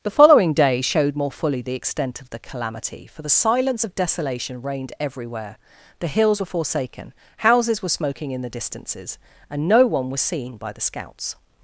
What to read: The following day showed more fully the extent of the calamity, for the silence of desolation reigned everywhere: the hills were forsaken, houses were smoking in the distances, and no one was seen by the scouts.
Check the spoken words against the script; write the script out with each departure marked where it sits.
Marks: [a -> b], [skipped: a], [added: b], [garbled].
The following day showed more fully the extent of the calamity, for the silence of desolation reigned everywhere: the hills were forsaken, houses were smoking in the distances, and no one was seen by the scouts.